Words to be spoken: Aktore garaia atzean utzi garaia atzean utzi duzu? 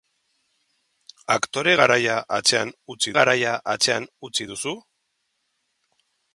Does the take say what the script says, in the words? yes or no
yes